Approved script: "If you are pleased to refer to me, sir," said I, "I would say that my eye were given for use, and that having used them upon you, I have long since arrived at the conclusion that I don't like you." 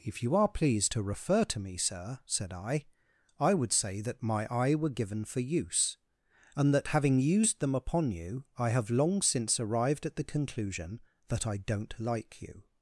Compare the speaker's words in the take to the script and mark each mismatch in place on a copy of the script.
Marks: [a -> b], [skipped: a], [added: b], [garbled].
"If you are pleased to refer to me, sir," said I, "I would say that my eye were given for use, and that having used them upon you, I have long since arrived at the conclusion that I don't like you."